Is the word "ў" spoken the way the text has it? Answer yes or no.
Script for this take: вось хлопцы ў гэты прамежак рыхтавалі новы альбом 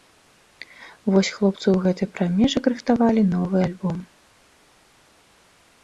yes